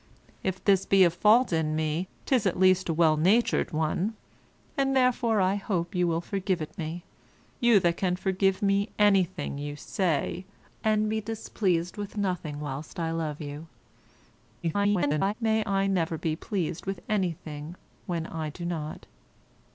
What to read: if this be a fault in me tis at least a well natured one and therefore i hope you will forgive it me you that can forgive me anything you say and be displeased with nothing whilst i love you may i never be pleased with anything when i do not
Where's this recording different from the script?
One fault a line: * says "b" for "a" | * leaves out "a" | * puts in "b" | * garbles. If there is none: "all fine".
* garbles